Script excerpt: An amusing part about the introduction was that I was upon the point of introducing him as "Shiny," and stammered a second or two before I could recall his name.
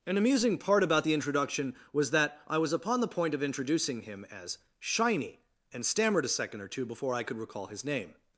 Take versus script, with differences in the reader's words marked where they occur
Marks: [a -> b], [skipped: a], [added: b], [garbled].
An amusing part about the introduction was that I was upon the point of introducing him as "Shiny," and stammered a second or two before I could recall his name.